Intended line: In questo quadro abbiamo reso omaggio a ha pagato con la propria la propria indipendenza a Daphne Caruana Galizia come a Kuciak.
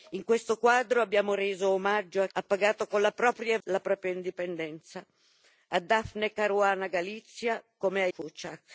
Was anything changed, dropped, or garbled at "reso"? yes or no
no